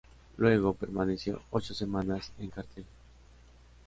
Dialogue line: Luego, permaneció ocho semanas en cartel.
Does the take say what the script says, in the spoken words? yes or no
yes